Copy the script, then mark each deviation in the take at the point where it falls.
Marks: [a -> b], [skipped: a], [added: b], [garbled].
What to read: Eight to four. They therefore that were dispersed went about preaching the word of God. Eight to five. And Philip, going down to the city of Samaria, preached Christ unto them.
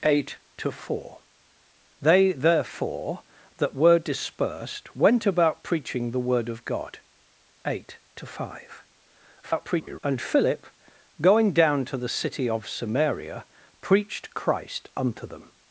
Eight to four. They therefore that were dispersed went about preaching the word of God. Eight to five. [garbled] And Philip, going down to the city of Samaria, preached Christ unto them.